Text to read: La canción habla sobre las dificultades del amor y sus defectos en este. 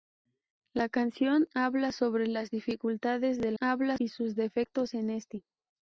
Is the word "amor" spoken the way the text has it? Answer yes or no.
no